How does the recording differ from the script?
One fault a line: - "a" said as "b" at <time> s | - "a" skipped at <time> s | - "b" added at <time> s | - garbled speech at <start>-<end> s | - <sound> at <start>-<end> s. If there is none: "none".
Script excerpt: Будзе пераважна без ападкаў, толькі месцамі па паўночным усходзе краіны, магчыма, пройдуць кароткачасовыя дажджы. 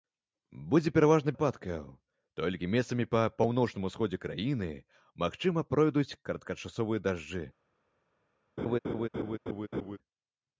- "без" skipped at 1.3 s
- laugh at 8.6-10.0 s